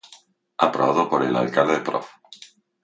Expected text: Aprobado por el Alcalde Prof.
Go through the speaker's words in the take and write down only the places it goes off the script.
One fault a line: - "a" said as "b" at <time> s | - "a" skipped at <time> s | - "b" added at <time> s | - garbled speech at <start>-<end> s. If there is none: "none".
none